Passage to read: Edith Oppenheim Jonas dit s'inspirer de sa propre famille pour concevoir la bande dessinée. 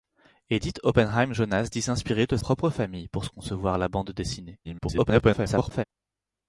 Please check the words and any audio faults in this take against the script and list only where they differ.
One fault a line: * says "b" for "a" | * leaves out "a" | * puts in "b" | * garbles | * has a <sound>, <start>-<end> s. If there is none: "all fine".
* leaves out "sa"
* garbles